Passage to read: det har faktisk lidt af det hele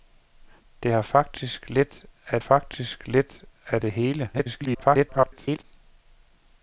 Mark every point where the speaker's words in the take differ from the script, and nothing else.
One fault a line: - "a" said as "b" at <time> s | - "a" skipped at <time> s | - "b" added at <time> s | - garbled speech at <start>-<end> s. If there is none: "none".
- "faktisk lidt af" added at 2.4 s
- garbled speech at 4.3-5.6 s